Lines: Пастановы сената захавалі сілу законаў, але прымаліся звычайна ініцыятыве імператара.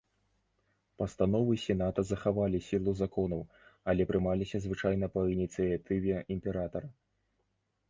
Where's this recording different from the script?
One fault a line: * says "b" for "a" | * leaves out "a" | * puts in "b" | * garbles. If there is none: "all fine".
* puts in "па"